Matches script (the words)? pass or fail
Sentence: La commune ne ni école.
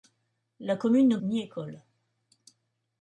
pass